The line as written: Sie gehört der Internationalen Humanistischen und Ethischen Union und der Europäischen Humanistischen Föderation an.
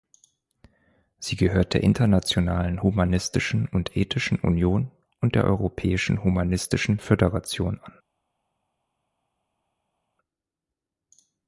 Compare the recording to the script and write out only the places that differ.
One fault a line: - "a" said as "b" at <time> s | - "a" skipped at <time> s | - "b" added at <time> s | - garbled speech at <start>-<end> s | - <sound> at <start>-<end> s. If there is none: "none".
none